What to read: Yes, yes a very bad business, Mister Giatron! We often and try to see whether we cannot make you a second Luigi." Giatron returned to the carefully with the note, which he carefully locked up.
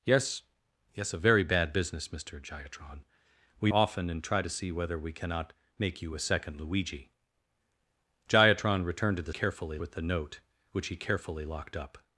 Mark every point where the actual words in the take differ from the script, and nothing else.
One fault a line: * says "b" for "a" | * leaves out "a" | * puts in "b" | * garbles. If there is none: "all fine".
all fine